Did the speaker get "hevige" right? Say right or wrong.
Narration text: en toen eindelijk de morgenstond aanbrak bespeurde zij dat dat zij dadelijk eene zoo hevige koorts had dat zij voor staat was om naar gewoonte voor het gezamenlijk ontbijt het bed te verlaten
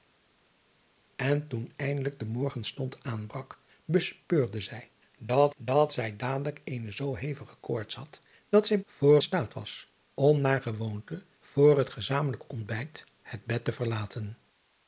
right